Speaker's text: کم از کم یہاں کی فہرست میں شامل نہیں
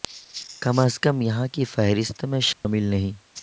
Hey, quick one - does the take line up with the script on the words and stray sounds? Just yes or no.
no